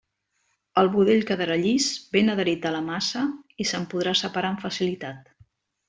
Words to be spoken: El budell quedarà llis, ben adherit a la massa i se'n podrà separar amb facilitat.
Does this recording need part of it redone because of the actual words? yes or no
no